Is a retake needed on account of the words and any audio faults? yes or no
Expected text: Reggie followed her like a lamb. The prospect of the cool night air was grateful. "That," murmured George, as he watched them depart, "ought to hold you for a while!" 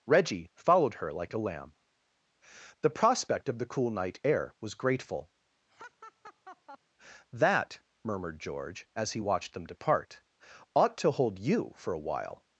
yes